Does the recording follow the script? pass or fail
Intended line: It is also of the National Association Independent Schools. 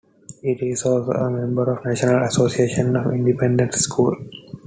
fail